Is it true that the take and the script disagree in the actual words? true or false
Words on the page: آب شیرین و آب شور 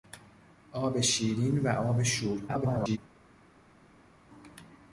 true